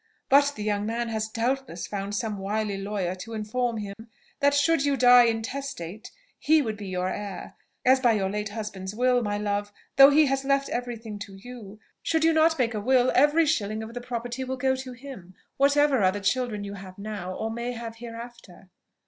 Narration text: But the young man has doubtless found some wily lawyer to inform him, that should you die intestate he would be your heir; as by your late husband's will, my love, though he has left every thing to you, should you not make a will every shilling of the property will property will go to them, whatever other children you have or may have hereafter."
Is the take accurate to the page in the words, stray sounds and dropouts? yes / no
no